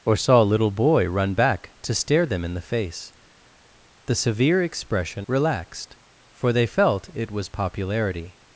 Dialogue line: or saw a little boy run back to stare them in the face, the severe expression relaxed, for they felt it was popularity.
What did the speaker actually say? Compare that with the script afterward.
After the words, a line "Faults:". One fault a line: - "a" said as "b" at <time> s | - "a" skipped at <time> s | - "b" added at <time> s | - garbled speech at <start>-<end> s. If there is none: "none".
or saw a little boy run back to stare them in the face, the severe expression relaxed, for they felt it was popularity.
Faults:
none